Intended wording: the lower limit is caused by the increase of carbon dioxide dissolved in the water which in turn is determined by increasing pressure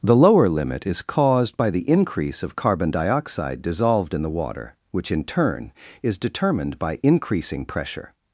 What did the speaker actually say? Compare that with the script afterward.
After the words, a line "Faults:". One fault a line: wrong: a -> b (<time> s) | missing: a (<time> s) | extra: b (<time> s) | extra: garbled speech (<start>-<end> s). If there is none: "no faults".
the lower limit is caused by the increase of carbon dioxide dissolved in the water which in turn is determined by increasing pressure
Faults:
no faults